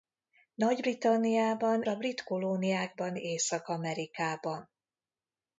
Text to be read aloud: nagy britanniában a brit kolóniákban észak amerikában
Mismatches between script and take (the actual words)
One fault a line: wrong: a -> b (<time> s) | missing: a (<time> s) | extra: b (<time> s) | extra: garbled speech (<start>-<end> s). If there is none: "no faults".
no faults